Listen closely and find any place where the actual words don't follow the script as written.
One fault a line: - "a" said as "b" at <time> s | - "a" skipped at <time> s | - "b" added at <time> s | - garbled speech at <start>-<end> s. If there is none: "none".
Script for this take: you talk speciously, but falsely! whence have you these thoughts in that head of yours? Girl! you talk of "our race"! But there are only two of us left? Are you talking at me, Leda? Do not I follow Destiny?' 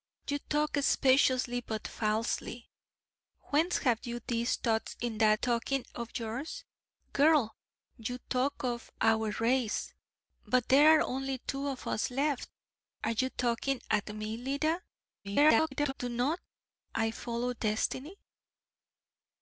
- "head" said as "talking" at 5.3 s
- garbled speech at 15.2-15.9 s